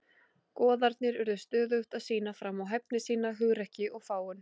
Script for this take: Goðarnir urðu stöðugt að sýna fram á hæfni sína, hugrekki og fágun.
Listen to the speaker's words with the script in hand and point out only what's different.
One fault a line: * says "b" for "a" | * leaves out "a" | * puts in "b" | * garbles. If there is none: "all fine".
all fine